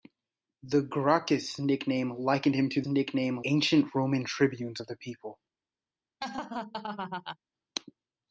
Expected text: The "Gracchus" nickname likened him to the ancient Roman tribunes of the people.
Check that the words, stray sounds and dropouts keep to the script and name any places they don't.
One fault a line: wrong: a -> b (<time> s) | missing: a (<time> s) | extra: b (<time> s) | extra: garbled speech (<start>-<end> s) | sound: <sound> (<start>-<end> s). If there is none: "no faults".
wrong: the -> nickname (2.9 s)
sound: laugh (6.2-7.4 s)